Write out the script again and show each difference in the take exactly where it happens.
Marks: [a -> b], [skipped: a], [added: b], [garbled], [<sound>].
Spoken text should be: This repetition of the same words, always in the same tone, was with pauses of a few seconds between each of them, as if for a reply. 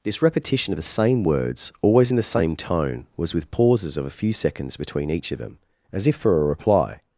This repetition of the same words, always in the same tone, was with pauses of a few seconds between each of them, as if for a reply.